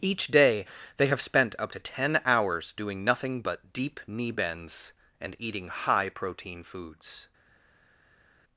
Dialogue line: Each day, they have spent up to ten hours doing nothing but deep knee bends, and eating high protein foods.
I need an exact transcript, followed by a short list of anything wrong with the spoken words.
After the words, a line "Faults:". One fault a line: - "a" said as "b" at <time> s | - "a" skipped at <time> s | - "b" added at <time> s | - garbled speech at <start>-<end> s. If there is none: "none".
Each day, they have spent up to ten hours doing nothing but deep knee bends, and eating high protein foods.
Faults:
none